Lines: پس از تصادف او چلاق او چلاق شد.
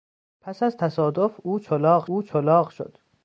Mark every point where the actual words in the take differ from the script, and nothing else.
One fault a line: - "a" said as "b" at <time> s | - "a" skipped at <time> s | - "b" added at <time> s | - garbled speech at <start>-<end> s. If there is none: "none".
none